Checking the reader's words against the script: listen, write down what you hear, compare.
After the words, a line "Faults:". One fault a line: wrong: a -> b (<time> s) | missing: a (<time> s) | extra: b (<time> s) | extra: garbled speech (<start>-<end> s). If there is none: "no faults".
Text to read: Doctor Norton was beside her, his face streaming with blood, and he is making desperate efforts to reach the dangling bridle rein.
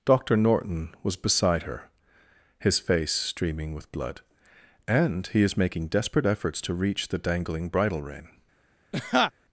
Doctor Norton was beside her, his face streaming with blood, and he is making desperate efforts to reach the dangling bridle rein.
Faults:
no faults